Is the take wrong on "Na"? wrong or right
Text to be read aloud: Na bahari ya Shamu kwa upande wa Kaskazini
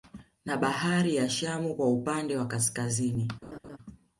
right